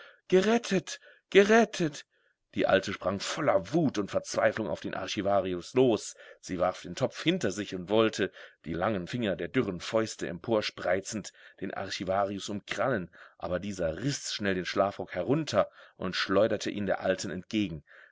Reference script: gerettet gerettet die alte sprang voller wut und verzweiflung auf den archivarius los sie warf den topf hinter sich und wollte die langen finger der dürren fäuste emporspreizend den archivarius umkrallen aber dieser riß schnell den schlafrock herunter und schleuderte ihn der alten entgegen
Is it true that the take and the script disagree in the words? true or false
false